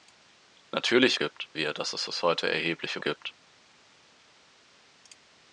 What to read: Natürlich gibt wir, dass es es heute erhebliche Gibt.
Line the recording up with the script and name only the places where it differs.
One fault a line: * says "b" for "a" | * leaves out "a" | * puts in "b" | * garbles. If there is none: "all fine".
all fine